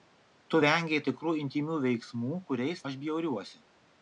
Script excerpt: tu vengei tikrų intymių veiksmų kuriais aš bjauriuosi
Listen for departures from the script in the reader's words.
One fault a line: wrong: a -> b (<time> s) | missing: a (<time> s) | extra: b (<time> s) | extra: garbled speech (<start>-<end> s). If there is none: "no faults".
no faults